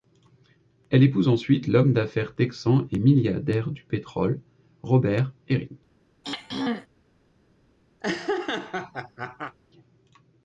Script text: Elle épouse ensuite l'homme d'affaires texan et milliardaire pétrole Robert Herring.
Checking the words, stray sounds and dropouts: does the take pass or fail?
fail